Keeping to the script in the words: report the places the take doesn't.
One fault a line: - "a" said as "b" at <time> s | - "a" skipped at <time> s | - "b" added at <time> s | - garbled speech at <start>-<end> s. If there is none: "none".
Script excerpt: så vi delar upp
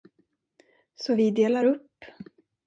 none